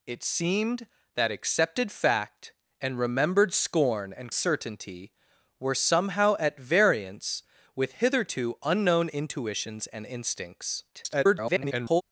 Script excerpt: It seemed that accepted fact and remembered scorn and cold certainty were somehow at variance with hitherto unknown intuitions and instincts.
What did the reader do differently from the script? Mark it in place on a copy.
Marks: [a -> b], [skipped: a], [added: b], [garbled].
It seemed that accepted fact and remembered scorn and [skipped: cold] certainty were somehow at variance with hitherto unknown intuitions and instincts. [garbled]